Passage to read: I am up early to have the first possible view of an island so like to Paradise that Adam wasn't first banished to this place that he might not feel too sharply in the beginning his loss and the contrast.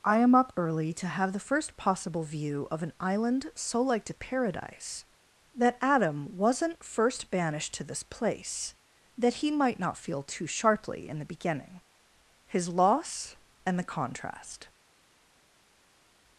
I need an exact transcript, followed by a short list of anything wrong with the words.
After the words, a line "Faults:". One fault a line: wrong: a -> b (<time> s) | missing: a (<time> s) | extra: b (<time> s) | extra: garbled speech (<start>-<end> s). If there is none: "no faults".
I am up early to have the first possible view of an island so like to Paradise that Adam wasn't first banished to this place that he might not feel too sharply in the beginning his loss and the contrast.
Faults:
no faults